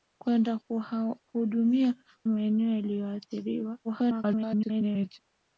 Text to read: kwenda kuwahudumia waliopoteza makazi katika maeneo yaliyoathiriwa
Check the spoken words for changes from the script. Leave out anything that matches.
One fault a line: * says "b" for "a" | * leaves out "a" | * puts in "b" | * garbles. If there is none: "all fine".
* leaves out "waliopoteza makazi katika"
* garbles